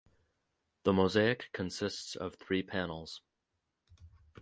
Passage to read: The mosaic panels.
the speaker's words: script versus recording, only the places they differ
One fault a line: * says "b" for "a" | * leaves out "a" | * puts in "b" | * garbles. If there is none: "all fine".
* puts in "consists of three"